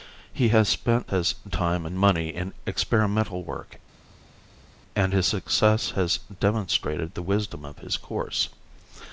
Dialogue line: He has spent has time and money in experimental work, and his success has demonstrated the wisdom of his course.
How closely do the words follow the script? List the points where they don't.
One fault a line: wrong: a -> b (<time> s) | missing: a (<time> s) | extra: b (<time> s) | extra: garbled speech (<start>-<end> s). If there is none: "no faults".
no faults